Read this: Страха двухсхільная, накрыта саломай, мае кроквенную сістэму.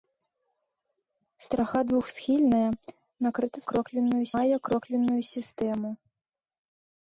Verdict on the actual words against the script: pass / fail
fail